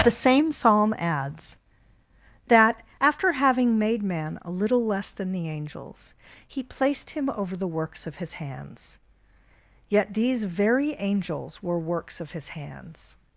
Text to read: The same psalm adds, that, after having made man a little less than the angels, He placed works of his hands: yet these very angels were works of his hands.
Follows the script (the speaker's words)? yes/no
no